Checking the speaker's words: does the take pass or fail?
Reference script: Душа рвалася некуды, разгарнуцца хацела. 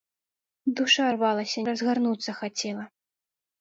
fail